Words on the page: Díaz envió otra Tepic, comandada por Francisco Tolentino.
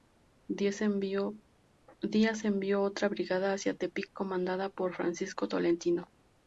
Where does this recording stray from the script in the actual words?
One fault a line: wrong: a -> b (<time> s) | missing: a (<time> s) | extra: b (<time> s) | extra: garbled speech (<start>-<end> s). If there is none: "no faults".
extra: brigada hacia (3.1 s)